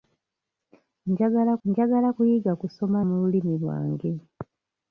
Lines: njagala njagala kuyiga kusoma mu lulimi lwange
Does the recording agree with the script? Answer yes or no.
yes